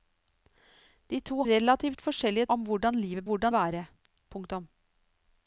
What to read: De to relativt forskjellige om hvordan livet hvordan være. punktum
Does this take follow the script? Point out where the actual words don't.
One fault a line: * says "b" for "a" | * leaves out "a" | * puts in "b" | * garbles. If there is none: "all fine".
all fine